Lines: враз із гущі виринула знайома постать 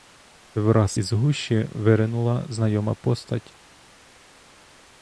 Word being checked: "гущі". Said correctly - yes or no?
yes